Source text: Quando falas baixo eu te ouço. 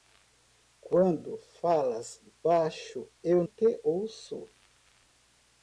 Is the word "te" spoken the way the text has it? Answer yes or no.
yes